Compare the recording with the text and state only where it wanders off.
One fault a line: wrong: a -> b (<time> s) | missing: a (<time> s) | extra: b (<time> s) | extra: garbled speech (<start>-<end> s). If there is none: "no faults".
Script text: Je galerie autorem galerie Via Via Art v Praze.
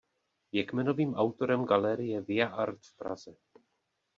wrong: galerie -> kmenovým (0.7 s)
missing: Via (2.5 s)